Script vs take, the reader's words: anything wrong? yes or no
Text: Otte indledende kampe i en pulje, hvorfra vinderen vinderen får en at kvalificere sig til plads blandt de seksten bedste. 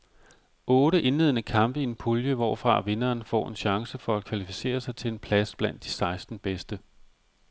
yes